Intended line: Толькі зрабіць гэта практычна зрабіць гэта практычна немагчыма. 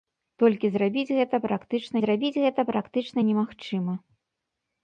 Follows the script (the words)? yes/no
yes